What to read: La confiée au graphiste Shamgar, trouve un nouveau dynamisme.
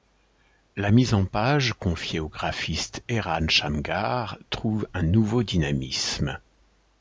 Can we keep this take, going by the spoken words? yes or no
no